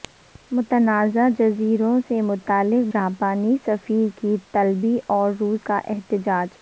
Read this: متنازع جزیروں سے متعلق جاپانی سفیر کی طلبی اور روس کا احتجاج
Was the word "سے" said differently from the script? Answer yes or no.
no